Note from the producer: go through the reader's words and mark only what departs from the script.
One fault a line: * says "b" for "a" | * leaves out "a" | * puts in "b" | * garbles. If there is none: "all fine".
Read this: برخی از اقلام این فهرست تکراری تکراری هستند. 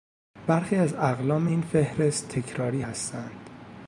* leaves out "تکراری"